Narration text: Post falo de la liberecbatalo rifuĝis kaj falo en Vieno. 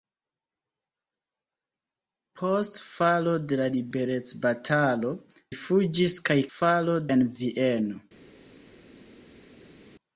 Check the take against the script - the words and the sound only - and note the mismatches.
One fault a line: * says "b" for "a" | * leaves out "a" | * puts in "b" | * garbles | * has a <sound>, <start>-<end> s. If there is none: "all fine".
all fine